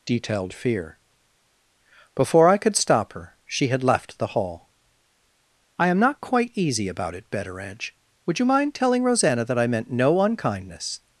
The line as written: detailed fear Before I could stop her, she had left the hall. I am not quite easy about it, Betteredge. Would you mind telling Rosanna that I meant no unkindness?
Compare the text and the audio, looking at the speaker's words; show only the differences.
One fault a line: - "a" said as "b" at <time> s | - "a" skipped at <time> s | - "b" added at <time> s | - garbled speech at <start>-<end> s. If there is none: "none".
none